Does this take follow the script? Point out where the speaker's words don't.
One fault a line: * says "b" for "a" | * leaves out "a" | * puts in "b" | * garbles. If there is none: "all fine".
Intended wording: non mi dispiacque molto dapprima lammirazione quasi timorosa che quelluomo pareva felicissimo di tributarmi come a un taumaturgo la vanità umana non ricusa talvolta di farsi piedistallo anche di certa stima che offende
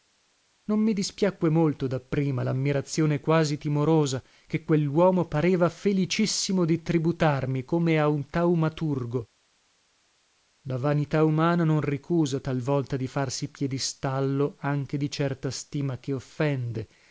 all fine